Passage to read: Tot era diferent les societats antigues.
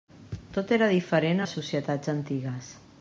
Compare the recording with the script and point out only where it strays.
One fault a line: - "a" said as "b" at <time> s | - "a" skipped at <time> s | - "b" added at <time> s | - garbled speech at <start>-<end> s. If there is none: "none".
none